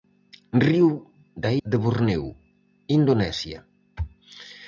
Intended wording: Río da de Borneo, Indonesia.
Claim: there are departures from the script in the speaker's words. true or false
false